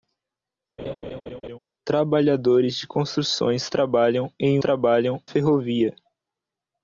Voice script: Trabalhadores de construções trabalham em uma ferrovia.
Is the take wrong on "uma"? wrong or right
wrong